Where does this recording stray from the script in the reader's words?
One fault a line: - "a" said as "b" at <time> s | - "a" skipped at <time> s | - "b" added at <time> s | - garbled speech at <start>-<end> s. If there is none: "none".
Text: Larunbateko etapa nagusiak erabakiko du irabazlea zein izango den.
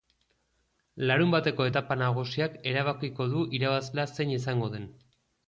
none